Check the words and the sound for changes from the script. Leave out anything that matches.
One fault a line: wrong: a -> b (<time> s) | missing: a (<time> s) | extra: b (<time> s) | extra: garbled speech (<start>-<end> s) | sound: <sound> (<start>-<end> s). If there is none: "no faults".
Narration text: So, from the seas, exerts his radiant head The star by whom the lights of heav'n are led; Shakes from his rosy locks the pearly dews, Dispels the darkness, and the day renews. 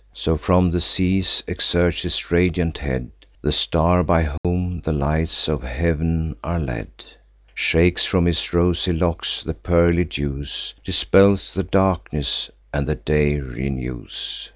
sound: dropout (4.4-4.4 s)